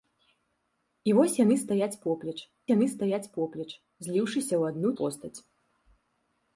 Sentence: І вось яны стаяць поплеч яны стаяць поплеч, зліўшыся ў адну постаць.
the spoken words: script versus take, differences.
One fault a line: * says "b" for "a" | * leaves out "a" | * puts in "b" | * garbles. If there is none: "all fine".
all fine